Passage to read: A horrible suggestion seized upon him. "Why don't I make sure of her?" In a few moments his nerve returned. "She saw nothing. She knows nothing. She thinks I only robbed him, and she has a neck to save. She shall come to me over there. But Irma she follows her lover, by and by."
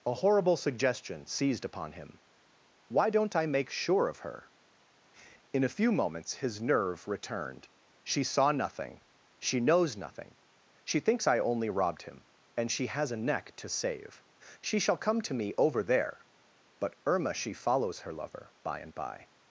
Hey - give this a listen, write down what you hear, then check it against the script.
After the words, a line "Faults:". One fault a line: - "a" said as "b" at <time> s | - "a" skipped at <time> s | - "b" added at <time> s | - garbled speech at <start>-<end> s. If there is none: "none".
A horrible suggestion seized upon him. "Why don't I make sure of her?" In a few moments his nerve returned. "She saw nothing. She knows nothing. She thinks I only robbed him, and she has a neck to save. She shall come to me over there. But Irma she follows her lover, by and by."
Faults:
none